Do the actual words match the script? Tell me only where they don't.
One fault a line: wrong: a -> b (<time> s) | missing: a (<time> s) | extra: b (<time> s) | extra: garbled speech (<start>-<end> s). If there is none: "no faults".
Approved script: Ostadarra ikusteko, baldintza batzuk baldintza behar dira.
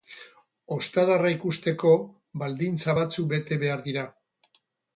wrong: baldintza -> bete (3.4 s)